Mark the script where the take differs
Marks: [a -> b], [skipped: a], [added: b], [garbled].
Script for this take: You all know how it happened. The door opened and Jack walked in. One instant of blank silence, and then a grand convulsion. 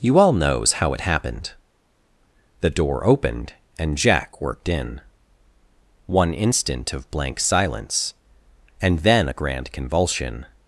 You all [know -> knows] how it happened. The door opened and Jack [walked -> worked] in. One instant of blank silence, and then a grand convulsion.